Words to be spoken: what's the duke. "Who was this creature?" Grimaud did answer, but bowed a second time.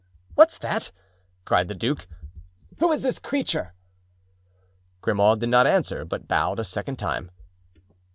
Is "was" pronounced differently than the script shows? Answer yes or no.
yes